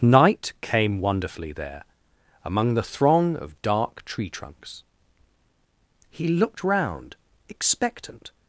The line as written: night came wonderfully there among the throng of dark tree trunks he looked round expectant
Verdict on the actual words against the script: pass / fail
pass